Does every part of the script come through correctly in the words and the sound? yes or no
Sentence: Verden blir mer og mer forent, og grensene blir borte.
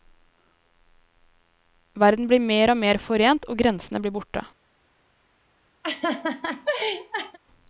no